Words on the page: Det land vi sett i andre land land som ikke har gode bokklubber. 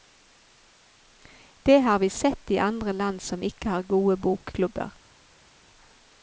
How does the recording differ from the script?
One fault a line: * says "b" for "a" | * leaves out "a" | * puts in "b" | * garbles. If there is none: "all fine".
* says "har" for "land"
* leaves out "land"